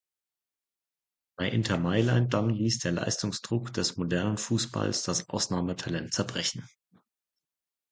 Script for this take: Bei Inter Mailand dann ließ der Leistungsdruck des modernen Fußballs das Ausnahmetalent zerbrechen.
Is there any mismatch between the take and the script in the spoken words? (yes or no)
no